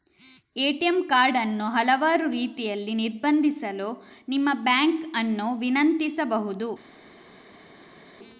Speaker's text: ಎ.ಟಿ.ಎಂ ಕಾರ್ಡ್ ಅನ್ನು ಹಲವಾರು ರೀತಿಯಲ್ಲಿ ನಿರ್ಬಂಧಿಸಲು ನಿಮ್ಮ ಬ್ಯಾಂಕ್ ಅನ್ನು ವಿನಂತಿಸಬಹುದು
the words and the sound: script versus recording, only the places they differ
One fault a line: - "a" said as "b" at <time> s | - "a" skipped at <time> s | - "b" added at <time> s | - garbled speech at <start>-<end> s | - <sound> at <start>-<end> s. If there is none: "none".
none